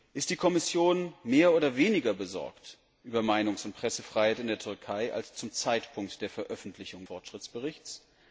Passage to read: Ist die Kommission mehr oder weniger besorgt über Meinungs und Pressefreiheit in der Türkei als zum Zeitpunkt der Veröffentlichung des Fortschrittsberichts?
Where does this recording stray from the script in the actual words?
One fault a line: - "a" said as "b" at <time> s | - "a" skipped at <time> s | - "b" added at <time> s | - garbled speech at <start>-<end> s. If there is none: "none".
- "des" skipped at 7.0 s